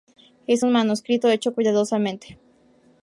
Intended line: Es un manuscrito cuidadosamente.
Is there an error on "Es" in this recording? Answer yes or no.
no